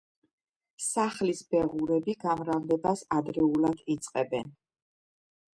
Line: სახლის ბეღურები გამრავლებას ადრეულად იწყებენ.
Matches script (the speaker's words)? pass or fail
pass